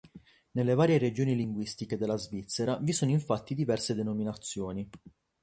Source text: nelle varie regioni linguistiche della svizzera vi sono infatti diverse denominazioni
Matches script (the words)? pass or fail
pass